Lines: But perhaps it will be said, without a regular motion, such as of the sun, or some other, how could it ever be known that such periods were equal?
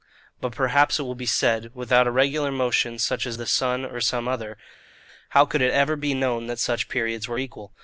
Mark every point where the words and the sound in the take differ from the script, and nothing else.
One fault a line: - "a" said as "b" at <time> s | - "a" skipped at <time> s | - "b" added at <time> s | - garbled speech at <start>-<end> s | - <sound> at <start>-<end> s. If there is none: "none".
- "of" skipped at 3.4 s